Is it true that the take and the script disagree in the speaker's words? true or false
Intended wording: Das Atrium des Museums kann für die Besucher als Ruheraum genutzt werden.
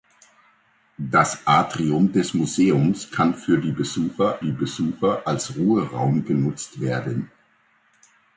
true